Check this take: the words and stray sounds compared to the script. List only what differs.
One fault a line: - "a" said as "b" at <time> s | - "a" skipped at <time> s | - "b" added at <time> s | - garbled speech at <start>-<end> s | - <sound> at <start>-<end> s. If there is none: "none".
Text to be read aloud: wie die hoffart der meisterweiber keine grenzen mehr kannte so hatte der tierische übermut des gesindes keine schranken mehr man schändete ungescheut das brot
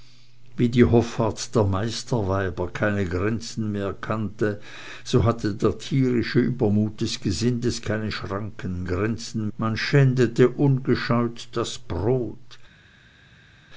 - "mehr" said as "grenzen" at 8.8 s